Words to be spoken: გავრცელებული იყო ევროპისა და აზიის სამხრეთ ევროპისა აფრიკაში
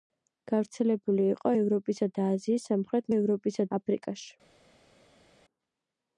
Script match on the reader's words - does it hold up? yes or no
yes